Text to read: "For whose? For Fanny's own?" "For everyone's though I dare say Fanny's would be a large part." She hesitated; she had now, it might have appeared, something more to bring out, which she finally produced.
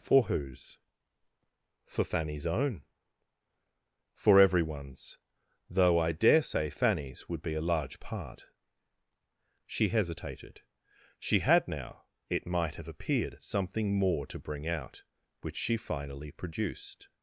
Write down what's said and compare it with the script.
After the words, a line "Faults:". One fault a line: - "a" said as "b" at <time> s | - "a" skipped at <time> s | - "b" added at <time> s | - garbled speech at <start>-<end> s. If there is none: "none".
"For whose? For Fanny's own?" "For everyone's though I dare say Fanny's would be a large part." She hesitated; she had now, it might have appeared, something more to bring out, which she finally produced.
Faults:
none